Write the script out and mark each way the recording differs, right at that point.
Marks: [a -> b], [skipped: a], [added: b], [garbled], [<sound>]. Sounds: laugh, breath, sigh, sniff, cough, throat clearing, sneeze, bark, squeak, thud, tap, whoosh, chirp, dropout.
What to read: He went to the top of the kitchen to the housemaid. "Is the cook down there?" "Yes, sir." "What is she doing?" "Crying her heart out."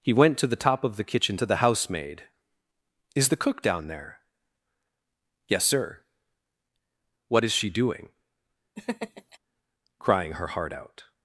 He went to the top of the kitchen to the housemaid. "Is the cook down there?" "Yes, sir." "What is she doing?" [laugh] "Crying her heart out."